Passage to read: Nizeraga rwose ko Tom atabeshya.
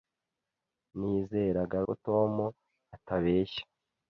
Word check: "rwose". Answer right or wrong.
wrong